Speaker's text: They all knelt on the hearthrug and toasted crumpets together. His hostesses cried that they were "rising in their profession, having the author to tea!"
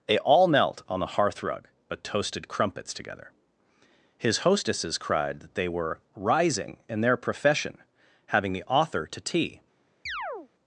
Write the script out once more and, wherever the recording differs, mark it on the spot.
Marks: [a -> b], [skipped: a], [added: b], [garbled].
They all knelt on the hearthrug [and -> but] toasted crumpets together. His hostesses cried that they were "rising in their profession, having the author to tea!"